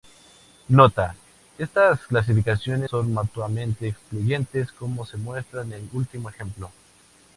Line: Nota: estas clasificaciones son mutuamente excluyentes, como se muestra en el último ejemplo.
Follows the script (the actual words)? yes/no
yes